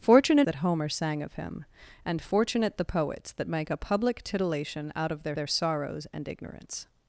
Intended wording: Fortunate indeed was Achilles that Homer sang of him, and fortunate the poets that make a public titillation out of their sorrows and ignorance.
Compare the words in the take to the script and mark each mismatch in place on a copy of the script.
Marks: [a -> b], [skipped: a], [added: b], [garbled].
Fortunate [skipped: indeed was Achilles] that Homer sang of him, and fortunate the poets that make a public titillation out of their [added: their] sorrows and ignorance.